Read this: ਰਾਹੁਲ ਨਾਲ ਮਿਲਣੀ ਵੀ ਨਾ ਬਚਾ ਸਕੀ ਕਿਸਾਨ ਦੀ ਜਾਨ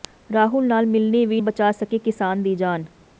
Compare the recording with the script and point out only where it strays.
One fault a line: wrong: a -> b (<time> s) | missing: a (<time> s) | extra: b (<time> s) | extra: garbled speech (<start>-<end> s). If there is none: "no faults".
missing: ਨਾ (1.4 s)